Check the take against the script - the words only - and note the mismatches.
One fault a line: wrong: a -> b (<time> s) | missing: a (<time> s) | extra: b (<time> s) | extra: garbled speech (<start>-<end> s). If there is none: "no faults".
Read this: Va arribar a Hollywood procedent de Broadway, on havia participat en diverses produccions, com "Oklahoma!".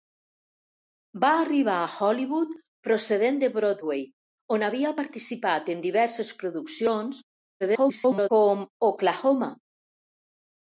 extra: garbled speech (7.6-8.3 s)